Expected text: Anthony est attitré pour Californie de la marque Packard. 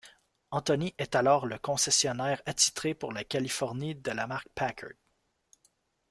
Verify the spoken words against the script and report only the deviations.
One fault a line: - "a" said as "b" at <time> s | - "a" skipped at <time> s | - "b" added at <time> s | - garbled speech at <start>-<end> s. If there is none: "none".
- "alors le concessionnaire" added at 1.1 s
- "la" added at 3.1 s